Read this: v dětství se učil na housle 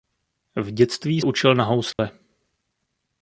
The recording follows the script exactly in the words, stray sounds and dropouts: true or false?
false